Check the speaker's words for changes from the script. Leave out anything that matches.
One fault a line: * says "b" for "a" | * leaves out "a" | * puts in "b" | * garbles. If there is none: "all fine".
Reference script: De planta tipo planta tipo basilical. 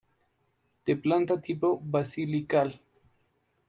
* leaves out "planta tipo"